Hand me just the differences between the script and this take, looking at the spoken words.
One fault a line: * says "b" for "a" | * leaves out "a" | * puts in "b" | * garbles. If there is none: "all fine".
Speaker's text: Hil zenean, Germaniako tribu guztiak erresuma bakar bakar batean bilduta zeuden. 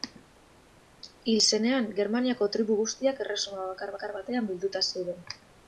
all fine